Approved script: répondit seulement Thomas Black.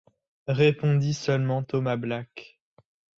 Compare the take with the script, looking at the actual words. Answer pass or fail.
pass